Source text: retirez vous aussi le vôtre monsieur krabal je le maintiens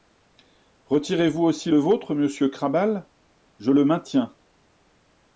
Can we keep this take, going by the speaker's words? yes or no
yes